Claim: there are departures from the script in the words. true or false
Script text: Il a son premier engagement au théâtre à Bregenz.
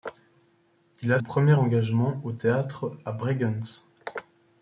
true